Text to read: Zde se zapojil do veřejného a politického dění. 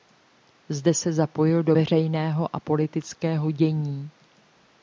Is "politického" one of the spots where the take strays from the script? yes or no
no